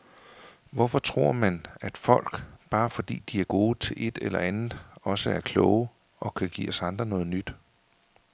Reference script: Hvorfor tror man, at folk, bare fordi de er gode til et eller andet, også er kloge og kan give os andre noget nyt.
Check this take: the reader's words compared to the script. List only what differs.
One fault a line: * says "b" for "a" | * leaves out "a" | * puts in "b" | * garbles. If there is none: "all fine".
all fine